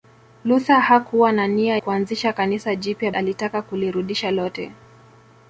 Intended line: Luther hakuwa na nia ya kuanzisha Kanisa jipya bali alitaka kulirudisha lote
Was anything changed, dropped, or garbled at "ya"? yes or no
yes